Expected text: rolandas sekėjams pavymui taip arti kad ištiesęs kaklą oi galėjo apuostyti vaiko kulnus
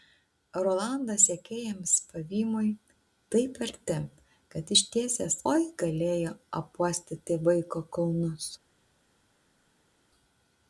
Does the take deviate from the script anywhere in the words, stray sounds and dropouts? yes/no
yes